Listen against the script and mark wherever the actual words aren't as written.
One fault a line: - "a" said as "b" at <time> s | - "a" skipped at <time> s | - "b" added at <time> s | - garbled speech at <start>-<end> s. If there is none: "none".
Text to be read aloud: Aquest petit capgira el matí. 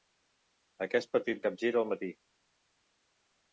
none